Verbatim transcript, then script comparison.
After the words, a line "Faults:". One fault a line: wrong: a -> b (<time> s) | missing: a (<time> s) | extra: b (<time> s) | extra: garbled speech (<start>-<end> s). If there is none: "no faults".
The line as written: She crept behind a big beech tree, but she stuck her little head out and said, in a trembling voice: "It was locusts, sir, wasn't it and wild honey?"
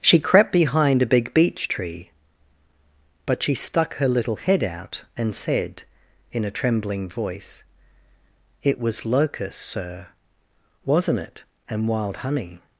She crept behind a big beech tree, but she stuck her little head out and said, in a trembling voice: "It was locusts, sir, wasn't it and wild honey?"
Faults:
no faults